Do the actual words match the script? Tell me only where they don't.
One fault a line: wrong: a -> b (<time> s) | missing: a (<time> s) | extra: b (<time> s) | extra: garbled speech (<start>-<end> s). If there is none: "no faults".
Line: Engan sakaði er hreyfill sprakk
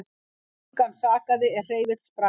no faults